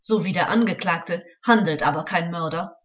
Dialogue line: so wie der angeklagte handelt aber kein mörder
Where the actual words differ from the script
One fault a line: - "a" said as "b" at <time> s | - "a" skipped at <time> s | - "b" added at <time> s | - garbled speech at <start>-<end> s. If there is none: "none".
none